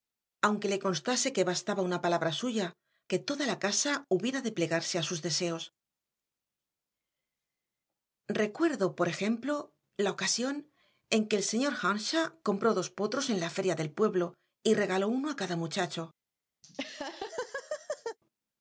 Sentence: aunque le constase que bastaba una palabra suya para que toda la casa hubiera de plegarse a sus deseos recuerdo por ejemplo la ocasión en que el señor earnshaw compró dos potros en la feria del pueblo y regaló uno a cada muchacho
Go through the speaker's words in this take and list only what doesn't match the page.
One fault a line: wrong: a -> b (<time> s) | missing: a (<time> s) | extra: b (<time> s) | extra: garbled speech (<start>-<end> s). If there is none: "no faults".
missing: para (2.7 s)